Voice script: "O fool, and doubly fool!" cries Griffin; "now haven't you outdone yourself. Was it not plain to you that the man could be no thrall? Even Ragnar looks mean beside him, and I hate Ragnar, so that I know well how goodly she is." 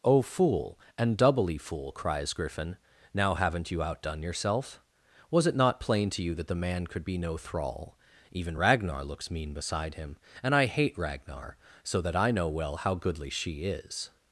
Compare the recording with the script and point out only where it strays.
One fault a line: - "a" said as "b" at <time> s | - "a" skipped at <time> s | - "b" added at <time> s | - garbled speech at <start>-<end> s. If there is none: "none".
none